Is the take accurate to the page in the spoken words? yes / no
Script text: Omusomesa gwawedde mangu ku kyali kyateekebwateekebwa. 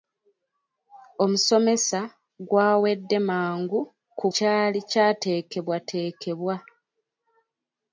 yes